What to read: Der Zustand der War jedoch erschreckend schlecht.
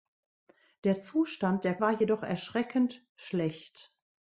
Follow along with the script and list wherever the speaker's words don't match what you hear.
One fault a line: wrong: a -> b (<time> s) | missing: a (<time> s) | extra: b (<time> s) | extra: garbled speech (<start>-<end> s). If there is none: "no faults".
no faults